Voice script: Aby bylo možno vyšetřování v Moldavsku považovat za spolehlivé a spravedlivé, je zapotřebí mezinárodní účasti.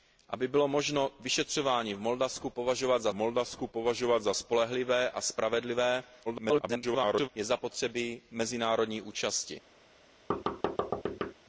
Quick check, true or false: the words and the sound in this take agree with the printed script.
false